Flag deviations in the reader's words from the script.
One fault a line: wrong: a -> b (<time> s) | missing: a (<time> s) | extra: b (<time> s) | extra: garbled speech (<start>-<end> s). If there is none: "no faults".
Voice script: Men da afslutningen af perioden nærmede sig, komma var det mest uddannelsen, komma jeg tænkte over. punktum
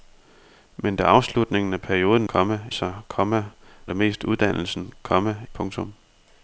wrong: nærmede -> komma (2.3 s)
missing: var (3.4 s)
missing: jeg tænkte over (5.4 s)